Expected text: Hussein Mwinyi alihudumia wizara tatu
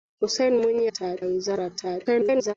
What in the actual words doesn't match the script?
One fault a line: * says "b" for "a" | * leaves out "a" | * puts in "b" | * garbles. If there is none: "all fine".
* says "tatu" for "alihudumia"
* garbles